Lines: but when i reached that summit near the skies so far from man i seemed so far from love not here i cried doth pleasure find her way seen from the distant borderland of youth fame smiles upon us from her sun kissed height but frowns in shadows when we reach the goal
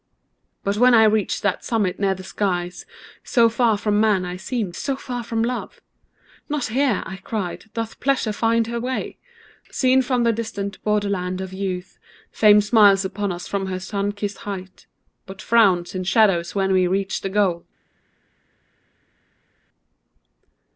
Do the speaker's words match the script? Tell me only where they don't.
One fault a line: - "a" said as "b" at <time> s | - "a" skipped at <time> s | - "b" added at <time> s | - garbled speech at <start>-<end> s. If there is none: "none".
none